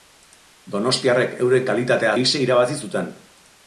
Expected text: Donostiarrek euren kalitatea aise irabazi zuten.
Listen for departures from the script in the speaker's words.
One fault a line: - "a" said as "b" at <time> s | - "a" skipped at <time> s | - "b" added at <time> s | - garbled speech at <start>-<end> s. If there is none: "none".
none